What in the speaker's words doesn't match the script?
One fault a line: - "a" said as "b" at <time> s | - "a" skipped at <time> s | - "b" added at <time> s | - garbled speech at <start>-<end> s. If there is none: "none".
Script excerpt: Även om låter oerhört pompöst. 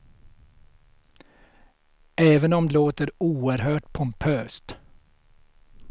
none